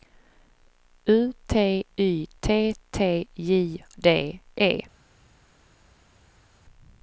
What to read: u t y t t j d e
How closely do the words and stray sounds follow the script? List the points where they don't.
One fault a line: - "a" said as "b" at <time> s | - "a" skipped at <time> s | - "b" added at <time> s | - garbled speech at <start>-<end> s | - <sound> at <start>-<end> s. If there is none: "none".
none